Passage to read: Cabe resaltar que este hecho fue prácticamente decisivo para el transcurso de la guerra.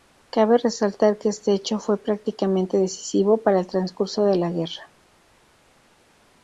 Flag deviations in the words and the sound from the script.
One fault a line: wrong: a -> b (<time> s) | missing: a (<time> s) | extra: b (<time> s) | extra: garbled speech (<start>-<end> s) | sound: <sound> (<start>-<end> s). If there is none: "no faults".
no faults